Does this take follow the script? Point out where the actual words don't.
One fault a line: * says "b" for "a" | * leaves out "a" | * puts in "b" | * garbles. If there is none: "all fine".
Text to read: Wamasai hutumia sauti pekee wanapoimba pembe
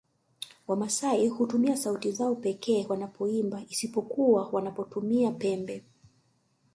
* puts in "zao"
* puts in "isipokuwa wanapotumia"